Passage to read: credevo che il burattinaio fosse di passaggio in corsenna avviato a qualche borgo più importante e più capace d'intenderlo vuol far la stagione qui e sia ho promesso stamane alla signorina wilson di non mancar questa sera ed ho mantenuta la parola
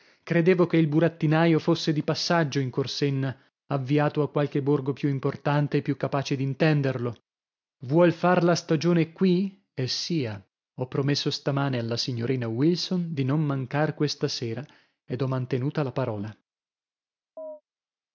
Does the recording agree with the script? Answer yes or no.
yes